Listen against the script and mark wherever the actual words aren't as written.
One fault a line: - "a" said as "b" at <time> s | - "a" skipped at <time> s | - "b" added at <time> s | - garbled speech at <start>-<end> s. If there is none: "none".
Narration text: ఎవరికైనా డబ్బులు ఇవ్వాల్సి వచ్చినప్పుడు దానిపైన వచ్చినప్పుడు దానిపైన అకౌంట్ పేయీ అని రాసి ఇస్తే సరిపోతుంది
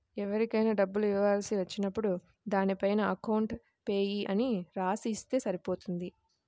- "వచ్చినప్పుడు దానిపైన" skipped at 3.0 s